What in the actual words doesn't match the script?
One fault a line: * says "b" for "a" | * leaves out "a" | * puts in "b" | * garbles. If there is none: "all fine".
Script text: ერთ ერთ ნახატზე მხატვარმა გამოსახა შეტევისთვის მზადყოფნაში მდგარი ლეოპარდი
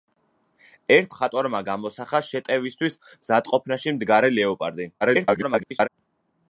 * leaves out "ერთ ნახატზე"
* garbles